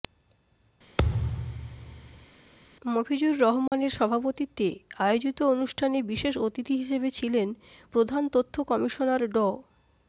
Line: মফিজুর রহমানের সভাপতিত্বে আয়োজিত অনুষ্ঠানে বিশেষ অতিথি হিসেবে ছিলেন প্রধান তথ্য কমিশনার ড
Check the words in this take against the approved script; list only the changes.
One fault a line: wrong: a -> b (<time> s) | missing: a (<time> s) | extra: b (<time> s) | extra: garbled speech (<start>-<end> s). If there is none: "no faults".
no faults